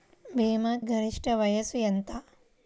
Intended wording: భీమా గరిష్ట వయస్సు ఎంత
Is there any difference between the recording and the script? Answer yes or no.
no